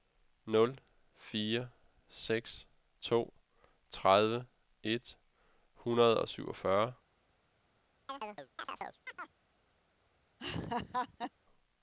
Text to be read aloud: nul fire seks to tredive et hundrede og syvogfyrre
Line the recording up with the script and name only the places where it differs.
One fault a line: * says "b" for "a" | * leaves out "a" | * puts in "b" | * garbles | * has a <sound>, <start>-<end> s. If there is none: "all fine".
* has a chirp, 8.1-9.4 s
* has a laugh, 10.4-11.3 s